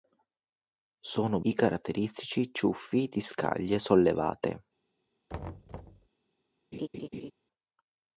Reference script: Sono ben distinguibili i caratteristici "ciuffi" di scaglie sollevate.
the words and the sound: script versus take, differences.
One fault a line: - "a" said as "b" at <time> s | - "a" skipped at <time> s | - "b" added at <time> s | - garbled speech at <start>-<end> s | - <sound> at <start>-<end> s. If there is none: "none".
- "ben distinguibili" skipped at 1.4 s
- thud at 5.3-6.1 s
- laugh at 6.7-7.3 s